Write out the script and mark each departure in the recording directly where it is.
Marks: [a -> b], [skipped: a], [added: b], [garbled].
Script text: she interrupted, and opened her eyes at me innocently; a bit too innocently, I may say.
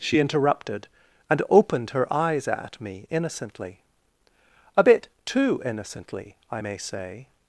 she interrupted, and opened her eyes at me innocently; a bit too innocently, I may say.